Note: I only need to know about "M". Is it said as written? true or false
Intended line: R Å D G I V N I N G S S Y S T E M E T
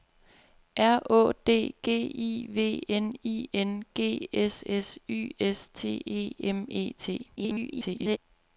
true